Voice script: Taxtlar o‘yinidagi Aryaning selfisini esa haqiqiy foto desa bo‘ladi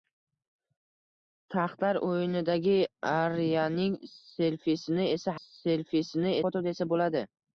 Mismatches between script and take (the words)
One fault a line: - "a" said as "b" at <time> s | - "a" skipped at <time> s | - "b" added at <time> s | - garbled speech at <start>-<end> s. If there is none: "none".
- "haqiqiy" said as "selfisini" at 5.4 s